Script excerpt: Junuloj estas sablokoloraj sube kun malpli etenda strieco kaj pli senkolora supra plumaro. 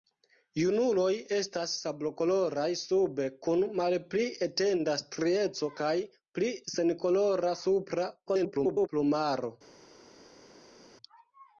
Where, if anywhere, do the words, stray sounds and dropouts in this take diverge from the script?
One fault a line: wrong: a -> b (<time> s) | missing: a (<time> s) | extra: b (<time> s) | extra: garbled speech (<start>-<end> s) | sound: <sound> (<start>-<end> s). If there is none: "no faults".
extra: garbled speech (8.3-8.9 s)